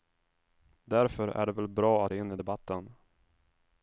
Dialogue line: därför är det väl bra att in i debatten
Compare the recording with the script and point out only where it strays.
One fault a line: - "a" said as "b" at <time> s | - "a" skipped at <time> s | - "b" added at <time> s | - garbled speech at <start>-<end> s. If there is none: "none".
none